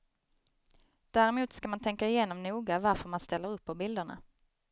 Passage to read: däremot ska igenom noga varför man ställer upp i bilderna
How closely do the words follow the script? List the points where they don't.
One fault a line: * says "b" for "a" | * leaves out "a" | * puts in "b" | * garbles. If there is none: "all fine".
* puts in "man tänka"
* says "på" for "i"